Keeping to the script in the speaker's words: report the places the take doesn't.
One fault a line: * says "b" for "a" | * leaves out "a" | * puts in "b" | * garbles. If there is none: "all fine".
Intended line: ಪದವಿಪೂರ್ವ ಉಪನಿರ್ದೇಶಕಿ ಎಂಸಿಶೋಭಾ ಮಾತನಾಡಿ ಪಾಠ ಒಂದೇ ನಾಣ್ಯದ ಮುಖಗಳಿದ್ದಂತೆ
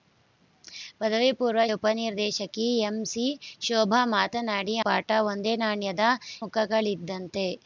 all fine